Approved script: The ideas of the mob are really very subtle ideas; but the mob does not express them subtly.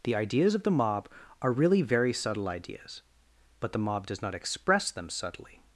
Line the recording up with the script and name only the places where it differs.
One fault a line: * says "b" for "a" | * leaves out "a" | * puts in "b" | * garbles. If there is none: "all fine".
all fine